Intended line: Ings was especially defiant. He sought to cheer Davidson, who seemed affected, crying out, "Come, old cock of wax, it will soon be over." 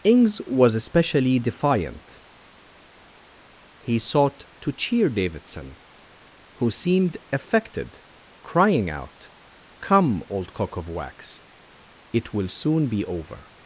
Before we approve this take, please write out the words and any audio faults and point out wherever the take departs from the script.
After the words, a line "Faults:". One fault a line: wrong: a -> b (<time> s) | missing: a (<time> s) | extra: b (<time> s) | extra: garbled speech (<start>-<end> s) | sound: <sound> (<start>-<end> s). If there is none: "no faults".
Ings was especially defiant. He sought to cheer Davidson, who seemed affected, crying out, "Come, old cock of wax, it will soon be over."
Faults:
no faults